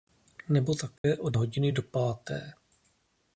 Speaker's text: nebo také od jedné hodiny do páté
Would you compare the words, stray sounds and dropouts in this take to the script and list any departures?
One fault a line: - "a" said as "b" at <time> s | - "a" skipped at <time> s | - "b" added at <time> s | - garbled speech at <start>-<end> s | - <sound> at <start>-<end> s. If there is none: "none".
- dropout at 1.0-1.0 s
- "jedné" skipped at 1.4 s